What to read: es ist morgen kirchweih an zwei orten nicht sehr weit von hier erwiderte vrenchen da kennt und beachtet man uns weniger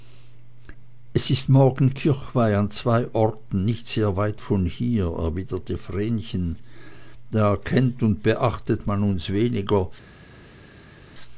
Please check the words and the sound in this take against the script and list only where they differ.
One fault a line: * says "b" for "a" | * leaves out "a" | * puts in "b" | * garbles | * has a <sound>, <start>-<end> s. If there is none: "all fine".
all fine